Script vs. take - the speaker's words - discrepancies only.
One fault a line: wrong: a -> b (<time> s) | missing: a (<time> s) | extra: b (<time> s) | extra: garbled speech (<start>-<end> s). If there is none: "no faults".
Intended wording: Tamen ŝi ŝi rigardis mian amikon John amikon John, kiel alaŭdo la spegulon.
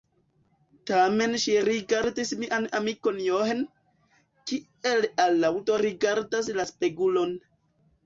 missing: ŝi (1.6 s)
missing: amikon John (3.7 s)
extra: rigardas (5.9 s)